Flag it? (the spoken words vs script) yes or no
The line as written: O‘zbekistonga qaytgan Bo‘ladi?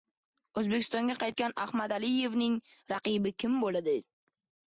yes